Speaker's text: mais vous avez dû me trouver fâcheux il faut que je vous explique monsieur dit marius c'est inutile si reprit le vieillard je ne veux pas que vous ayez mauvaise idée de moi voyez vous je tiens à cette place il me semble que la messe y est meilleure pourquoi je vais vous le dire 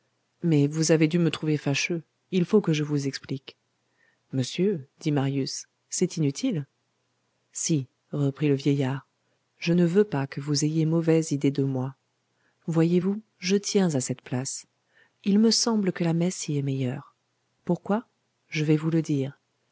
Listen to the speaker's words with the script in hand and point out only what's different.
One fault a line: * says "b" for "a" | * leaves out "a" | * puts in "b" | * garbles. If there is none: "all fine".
all fine